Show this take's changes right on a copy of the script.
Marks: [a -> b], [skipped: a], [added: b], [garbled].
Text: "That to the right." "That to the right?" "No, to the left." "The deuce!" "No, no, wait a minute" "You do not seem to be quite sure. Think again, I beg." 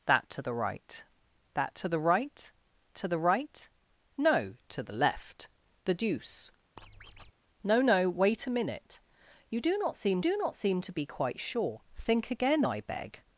"That to the right." "That to the right?" [added: to the right] "No, to the left." "The deuce!" "No, no, wait a minute" "You do not seem [added: do not seem] to be quite sure. Think again, I beg."